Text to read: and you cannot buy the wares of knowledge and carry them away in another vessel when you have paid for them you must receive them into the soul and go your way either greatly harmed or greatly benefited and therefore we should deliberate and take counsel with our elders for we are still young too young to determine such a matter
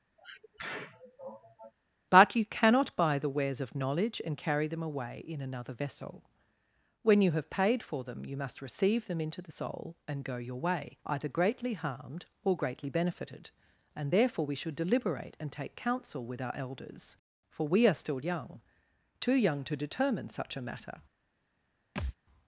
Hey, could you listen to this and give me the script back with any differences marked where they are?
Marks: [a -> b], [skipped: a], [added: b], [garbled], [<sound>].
[sneeze] [and -> but] you cannot buy the wares of knowledge and carry them away in another vessel when you have paid for them you must receive them into the soul and go your way either greatly harmed or greatly benefited and therefore we should deliberate and take counsel with our elders for we are still young too young to determine such a matter [thud]